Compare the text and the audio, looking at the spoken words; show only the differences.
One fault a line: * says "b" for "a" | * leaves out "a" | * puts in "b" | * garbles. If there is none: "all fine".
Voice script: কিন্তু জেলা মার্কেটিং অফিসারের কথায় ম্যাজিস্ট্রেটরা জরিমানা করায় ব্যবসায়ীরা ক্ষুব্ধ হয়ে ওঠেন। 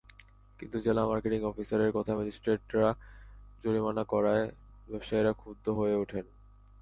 all fine